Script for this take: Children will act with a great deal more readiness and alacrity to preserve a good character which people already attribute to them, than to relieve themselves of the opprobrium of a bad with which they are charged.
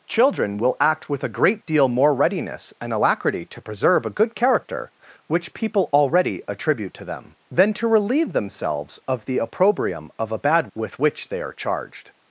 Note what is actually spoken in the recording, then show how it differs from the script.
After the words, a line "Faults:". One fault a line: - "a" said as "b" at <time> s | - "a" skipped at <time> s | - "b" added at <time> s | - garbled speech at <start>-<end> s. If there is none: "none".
Children will act with a great deal more readiness and alacrity to preserve a good character which people already attribute to them, than to relieve themselves of the opprobrium of a bad with which they are charged.
Faults:
none